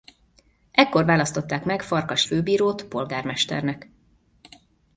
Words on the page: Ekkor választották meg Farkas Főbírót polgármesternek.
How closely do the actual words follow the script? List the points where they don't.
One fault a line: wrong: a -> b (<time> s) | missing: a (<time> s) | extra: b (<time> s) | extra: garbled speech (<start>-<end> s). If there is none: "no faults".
no faults